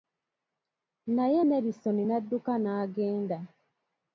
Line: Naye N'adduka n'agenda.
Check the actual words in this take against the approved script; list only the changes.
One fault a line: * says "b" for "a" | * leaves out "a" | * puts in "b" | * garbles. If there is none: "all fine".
* puts in "Nelisoni"